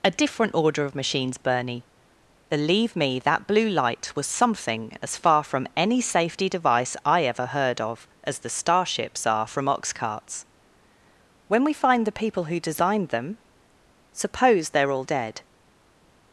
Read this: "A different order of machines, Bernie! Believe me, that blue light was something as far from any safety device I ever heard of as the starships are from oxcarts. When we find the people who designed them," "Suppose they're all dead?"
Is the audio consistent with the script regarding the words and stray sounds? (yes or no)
yes